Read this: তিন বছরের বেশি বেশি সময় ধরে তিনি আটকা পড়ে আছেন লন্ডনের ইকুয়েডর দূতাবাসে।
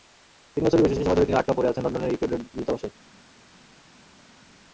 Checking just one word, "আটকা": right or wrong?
right